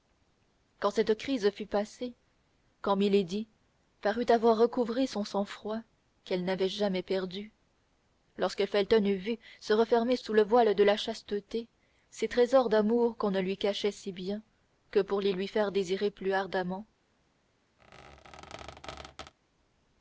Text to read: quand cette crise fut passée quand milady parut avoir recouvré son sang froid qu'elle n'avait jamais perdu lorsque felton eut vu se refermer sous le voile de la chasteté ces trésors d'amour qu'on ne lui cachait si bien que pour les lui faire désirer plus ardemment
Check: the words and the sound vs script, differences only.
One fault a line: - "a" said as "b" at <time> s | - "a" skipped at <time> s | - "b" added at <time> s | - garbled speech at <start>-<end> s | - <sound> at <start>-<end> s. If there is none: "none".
- squeak at 17.8-19.3 s